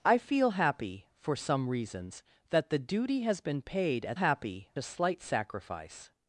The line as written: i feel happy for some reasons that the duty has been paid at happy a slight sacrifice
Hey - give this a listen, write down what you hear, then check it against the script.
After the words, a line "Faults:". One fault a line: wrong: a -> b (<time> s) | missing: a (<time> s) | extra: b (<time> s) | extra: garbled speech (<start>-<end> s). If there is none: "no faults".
i feel happy for some reasons that the duty has been paid at happy a slight sacrifice
Faults:
no faults